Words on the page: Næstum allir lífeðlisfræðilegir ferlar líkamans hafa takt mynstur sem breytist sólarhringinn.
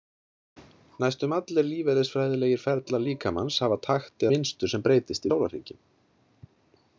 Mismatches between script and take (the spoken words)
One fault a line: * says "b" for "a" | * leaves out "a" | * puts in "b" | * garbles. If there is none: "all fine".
all fine